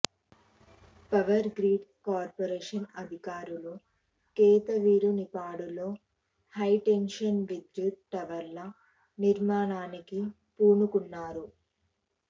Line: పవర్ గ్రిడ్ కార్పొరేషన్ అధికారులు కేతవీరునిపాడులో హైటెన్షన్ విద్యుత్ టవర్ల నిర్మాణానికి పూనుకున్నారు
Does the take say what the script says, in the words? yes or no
yes